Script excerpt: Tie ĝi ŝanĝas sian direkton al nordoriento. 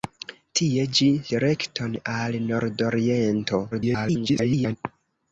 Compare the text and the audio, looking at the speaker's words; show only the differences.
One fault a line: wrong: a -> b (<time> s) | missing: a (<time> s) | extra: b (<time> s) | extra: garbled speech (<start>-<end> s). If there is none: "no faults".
missing: ŝanĝas sian (1.1 s)
extra: garbled speech (3.7-4.8 s)